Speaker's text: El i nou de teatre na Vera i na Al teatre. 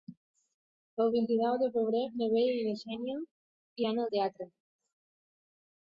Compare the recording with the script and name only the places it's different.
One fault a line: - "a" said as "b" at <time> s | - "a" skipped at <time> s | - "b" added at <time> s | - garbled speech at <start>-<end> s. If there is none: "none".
- "vint" added at 1.2 s
- "teatre" said as "febrer" at 1.8 s
- "Xènia iran" added at 2.9 s